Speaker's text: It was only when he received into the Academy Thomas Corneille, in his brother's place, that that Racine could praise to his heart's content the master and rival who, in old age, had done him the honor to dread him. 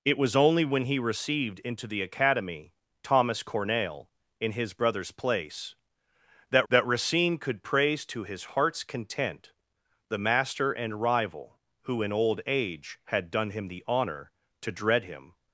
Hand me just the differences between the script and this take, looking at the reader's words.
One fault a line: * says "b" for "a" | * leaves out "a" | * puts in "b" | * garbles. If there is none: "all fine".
all fine